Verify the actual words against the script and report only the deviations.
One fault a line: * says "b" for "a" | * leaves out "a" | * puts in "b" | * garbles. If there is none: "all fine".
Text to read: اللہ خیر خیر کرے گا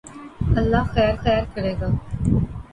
all fine